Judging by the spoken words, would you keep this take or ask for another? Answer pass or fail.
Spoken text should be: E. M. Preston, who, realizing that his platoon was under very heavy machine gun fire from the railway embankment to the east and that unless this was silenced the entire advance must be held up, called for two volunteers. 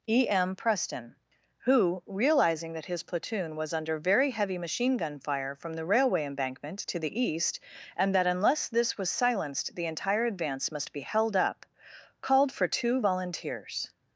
pass